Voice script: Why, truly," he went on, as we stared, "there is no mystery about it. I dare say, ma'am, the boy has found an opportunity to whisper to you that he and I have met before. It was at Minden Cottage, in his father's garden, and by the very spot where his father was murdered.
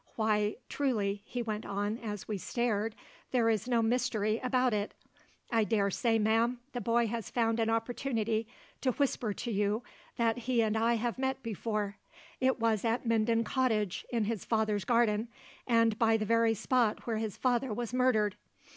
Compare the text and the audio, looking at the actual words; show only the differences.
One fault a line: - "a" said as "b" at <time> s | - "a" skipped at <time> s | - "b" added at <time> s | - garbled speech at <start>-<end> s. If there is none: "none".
none